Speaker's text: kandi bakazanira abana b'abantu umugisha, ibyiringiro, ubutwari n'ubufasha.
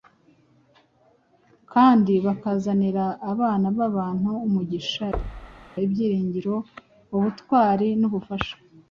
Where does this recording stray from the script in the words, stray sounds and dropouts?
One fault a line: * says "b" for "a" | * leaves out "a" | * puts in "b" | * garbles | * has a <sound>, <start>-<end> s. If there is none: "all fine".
* has a thud, 5.1-5.7 s